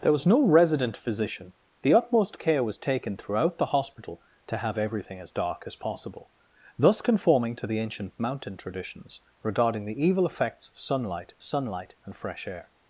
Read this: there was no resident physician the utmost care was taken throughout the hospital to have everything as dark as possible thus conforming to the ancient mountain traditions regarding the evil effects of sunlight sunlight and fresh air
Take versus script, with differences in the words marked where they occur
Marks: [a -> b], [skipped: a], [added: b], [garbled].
there was no resident physician the utmost care was taken throughout the hospital to have everything as dark as possible thus conforming to the ancient mountain traditions regarding the evil effects of sunlight sunlight and fresh air